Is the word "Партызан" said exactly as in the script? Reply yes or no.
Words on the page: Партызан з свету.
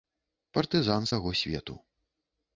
yes